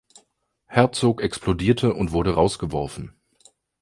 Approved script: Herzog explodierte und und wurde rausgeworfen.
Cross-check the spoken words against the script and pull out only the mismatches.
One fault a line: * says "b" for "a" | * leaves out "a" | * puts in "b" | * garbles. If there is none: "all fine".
* leaves out "und"